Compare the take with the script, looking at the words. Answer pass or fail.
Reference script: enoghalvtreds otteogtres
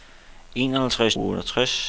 pass